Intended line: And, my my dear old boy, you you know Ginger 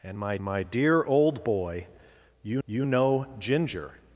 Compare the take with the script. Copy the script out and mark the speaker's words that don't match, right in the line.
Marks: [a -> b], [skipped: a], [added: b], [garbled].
And, my my dear old boy, you you know Ginger